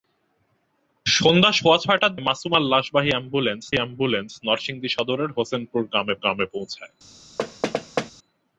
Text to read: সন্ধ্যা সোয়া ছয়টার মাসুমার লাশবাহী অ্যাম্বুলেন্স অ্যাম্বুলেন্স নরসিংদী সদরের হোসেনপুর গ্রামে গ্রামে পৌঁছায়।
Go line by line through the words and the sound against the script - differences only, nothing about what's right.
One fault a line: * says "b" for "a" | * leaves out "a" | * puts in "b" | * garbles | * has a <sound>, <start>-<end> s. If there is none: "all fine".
* has a thud, 7.4-8.1 s